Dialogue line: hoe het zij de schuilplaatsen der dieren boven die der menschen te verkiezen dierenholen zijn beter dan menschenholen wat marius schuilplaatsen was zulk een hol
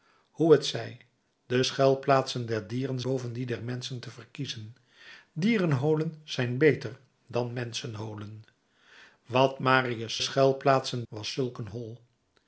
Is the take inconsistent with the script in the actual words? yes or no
no